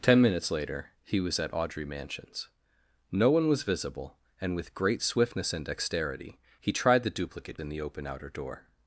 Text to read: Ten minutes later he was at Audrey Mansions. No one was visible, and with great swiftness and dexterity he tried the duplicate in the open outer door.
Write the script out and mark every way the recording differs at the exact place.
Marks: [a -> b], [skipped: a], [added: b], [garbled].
Ten minutes later he was at Audrey Mansions. No one was visible, and with great swiftness and dexterity he tried the duplicate in the open outer door.